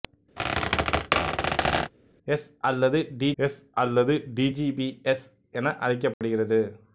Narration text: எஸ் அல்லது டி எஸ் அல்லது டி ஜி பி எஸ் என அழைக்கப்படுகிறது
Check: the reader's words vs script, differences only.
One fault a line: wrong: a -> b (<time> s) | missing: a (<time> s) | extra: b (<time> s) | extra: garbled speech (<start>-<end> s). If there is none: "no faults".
no faults